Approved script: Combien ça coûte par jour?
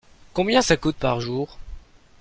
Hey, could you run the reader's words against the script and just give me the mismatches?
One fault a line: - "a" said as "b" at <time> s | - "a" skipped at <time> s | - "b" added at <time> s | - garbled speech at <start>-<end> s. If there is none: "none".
none